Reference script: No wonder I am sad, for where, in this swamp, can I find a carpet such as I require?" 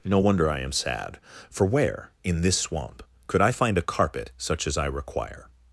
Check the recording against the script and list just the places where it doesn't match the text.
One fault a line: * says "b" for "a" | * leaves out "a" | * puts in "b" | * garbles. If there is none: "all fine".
* says "could" for "can"